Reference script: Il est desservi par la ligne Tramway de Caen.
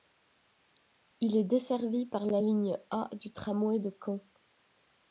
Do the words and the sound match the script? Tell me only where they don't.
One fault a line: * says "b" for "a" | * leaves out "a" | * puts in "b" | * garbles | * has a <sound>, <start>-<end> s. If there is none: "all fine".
* puts in "A du"